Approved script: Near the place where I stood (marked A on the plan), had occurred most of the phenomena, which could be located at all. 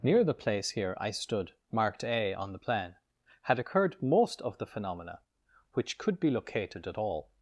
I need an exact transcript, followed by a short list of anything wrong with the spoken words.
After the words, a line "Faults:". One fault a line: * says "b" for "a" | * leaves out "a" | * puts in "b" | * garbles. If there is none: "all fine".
Near the place here I stood (marked A on the plan), had occurred most of the phenomena, which could be located at all.
Faults:
* says "here" for "where"